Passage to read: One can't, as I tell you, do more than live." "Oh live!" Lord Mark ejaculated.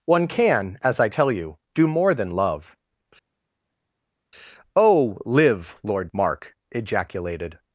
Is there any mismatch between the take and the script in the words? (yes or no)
yes